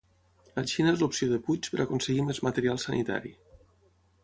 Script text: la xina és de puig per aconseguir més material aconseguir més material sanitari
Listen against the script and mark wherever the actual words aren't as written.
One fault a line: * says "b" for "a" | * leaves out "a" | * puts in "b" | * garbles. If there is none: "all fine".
* puts in "l'opció"
* leaves out "aconseguir més material"